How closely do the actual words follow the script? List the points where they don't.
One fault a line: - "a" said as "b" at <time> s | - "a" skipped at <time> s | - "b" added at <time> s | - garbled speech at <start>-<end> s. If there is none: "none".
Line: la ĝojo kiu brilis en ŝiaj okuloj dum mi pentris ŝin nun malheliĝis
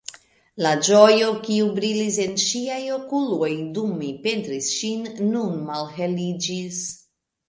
none